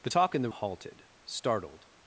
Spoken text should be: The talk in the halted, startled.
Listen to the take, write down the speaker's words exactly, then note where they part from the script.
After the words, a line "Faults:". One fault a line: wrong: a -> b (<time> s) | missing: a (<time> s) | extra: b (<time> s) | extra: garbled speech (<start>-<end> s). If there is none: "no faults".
The talk in the halted, startled.
Faults:
no faults